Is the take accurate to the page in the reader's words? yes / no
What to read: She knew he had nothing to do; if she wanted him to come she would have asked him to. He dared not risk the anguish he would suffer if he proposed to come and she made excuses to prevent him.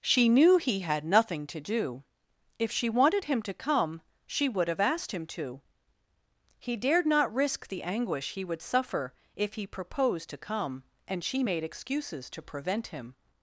yes